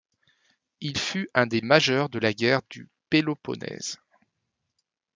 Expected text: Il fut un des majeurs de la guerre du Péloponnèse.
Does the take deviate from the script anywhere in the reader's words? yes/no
no